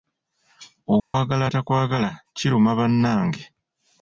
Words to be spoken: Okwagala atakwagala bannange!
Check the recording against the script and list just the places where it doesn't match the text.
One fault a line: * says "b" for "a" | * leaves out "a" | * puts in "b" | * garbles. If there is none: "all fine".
* puts in "kiruma"